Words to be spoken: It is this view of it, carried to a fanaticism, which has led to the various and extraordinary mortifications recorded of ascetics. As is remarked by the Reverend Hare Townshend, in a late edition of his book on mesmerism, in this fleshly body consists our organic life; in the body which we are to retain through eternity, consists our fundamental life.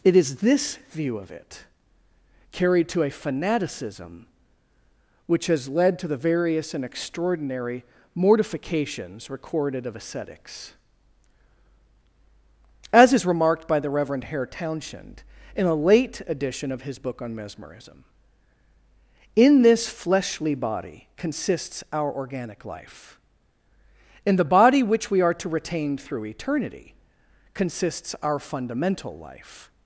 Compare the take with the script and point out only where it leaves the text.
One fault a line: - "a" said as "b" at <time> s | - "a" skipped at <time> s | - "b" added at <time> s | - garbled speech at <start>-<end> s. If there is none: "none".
none